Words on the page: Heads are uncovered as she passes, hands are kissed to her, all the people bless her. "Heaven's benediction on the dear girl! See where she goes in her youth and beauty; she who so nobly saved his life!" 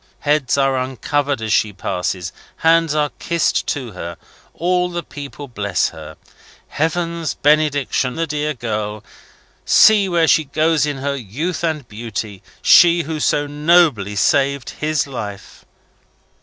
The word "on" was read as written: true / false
false